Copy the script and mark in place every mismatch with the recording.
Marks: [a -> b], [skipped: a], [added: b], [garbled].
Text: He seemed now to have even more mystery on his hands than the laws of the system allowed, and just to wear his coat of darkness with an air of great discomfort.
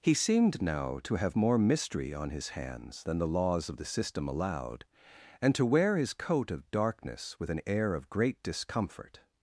He seemed now to have [skipped: even] more mystery on his hands than the laws of the system allowed, and [skipped: just] to wear his coat of darkness with an air of great discomfort.